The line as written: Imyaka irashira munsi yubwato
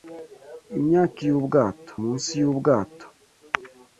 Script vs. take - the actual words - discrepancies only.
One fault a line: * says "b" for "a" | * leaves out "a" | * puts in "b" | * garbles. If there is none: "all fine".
* says "yubwato" for "irashira"